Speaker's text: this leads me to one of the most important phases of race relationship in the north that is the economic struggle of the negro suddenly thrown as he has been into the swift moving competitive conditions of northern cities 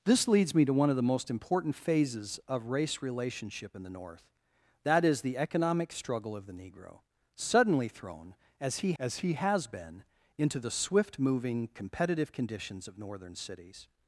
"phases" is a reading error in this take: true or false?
false